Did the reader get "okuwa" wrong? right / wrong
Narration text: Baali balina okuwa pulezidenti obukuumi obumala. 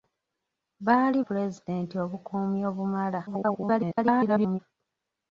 wrong